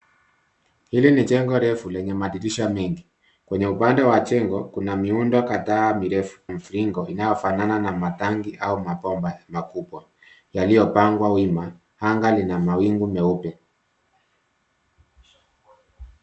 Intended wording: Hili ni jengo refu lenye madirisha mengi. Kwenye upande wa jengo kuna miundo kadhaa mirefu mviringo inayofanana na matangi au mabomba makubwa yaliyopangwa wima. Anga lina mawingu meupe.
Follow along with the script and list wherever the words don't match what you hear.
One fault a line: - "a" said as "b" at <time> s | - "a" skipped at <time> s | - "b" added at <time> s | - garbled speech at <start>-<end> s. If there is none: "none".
none